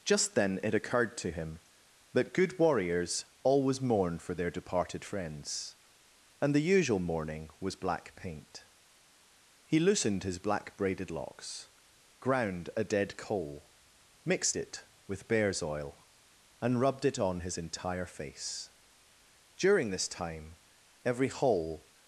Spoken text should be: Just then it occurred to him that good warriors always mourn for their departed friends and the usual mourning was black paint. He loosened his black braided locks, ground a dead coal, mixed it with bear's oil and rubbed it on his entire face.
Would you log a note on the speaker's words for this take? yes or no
yes